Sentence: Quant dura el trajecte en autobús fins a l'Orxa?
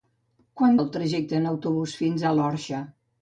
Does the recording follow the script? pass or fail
fail